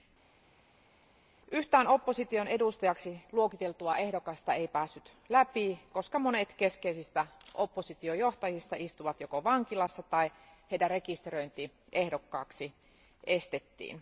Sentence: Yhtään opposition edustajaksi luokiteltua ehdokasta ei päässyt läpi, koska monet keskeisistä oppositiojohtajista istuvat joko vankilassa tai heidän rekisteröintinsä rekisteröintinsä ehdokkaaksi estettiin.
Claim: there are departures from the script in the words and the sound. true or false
true